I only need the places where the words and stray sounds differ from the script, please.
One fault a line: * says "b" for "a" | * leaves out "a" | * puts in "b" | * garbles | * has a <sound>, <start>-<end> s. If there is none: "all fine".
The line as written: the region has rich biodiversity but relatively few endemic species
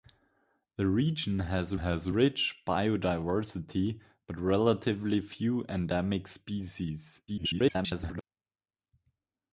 * puts in "has"
* garbles